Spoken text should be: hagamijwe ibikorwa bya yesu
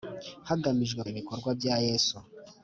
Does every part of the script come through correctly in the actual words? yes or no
yes